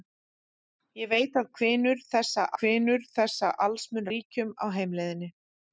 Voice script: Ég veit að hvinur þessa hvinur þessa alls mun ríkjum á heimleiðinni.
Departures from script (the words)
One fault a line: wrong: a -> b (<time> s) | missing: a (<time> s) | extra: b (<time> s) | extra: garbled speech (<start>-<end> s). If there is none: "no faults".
no faults